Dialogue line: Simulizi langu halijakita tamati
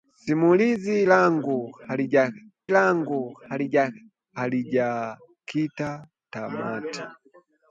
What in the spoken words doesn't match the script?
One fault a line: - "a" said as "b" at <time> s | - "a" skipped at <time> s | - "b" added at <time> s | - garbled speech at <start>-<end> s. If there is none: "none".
- "langu" added at 2.7 s